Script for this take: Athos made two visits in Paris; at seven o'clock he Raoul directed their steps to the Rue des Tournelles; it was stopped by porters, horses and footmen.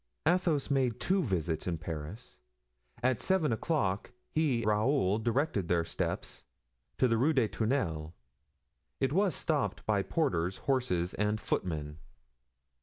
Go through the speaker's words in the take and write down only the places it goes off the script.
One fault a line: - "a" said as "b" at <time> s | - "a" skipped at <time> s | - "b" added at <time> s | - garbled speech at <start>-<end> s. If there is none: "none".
none